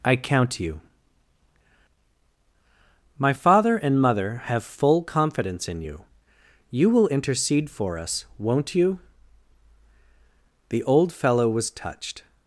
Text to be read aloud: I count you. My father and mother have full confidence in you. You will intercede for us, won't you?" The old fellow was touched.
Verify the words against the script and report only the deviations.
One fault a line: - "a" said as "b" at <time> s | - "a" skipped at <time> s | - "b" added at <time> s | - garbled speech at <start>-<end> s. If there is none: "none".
none